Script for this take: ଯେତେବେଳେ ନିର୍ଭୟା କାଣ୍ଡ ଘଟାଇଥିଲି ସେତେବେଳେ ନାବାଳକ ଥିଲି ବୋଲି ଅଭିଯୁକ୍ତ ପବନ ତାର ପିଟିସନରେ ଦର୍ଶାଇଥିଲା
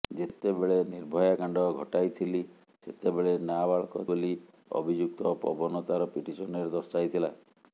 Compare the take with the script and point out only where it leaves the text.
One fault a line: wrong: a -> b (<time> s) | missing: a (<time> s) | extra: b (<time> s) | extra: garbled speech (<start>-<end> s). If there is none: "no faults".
missing: ଥିଲି (4.1 s)